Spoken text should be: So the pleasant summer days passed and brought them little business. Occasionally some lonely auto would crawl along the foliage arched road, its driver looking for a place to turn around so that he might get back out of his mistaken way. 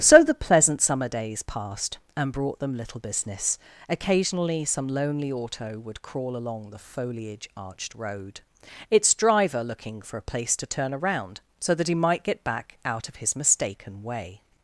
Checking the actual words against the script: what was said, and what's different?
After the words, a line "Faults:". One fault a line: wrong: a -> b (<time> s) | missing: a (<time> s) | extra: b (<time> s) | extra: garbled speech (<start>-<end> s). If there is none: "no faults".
So the pleasant summer days passed and brought them little business. Occasionally some lonely auto would crawl along the foliage arched road, its driver looking for a place to turn around so that he might get back out of his mistaken way.
Faults:
no faults